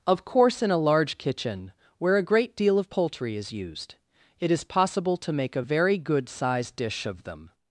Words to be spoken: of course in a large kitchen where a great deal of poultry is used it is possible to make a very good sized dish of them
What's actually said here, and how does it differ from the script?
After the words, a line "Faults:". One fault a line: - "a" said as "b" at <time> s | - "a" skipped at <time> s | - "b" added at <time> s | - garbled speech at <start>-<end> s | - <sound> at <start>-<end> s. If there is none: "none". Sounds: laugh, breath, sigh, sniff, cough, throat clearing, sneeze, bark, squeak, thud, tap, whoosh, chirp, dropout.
of course in a large kitchen where a great deal of poultry is used it is possible to make a very good sized dish of them
Faults:
none